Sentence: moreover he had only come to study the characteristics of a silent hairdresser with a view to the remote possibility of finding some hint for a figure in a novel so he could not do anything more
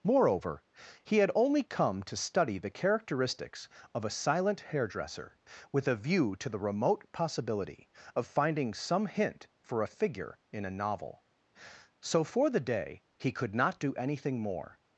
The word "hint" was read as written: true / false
true